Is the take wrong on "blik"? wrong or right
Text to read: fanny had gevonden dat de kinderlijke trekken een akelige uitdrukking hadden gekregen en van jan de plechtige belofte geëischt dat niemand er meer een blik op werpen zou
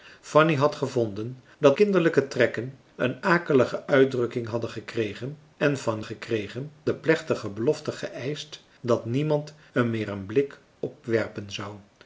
right